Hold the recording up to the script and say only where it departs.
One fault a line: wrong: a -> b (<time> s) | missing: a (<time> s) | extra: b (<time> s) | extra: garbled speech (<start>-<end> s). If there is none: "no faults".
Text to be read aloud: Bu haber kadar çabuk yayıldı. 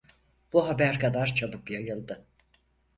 no faults